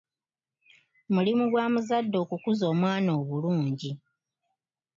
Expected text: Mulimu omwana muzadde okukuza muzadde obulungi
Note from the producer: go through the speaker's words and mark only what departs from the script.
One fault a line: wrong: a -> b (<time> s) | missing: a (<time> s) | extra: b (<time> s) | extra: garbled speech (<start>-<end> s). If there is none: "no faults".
wrong: omwana -> gwa (1.5 s)
wrong: muzadde -> omwana (2.7 s)